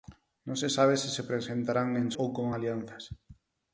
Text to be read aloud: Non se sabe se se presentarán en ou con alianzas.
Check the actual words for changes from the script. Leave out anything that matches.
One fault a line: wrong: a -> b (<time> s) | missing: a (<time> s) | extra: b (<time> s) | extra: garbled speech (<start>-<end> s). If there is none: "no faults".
no faults